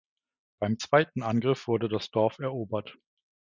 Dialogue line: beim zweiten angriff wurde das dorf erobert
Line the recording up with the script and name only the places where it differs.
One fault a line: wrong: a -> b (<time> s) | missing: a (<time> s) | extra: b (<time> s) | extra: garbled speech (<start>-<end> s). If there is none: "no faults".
no faults